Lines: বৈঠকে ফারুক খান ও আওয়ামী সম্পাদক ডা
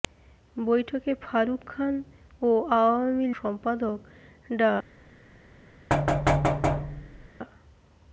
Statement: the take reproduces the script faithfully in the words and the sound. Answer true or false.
false